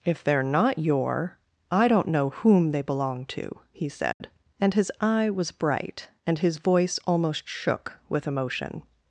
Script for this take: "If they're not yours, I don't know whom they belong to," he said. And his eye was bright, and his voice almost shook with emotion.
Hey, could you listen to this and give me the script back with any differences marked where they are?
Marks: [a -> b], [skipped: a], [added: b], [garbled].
"If they're not [yours, -> your] I don't know whom they belong to," he said. And his eye was bright, and his voice almost shook with emotion.